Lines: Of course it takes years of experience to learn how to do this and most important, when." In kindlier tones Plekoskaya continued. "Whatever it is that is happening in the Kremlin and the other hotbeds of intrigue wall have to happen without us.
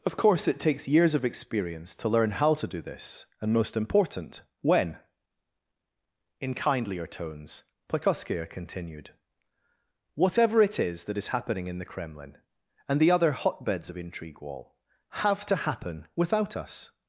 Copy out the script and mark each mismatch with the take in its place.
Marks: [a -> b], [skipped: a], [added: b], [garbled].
Of course it takes years of experience to learn how to do this and most important, when." In kindlier tones Plekoskaya continued. "Whatever it is that is happening in the Kremlin and the other hotbeds of intrigue wall have to happen without us.